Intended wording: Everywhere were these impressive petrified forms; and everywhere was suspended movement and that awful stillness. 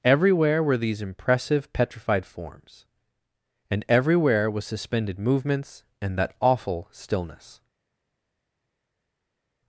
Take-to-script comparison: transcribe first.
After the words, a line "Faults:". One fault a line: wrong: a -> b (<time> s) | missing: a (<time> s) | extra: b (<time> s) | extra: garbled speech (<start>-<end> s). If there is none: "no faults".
Everywhere were these impressive petrified forms; and everywhere was suspended movements and that awful stillness.
Faults:
wrong: movement -> movements (5.2 s)